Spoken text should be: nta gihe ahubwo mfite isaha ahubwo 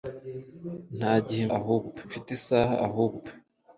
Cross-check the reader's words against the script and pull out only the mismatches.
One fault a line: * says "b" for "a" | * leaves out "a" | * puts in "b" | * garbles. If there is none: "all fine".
all fine